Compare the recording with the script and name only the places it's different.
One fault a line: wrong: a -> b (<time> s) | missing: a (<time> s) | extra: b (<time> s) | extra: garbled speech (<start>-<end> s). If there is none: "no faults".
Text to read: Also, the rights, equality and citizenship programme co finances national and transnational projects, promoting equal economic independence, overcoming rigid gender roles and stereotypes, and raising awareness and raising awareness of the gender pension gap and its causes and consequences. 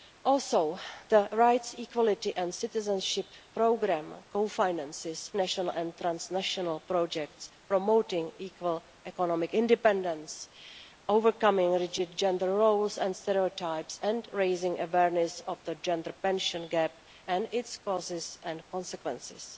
missing: and raising awareness (15.4 s)